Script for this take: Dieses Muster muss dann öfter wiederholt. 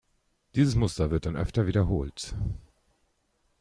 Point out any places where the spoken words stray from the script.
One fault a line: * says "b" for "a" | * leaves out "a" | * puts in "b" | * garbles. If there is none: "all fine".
* says "wird" for "muss"